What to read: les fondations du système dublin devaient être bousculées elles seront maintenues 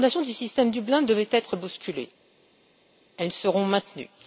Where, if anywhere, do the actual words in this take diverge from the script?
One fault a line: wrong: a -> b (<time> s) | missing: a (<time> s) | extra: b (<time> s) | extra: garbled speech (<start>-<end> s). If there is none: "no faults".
no faults